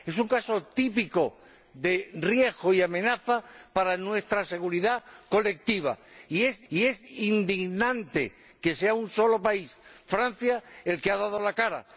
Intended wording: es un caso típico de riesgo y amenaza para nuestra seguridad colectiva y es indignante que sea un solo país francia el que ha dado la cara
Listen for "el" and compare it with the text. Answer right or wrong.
right